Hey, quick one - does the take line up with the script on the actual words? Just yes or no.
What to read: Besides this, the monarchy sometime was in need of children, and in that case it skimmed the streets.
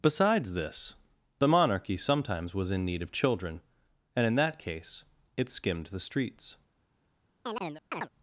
no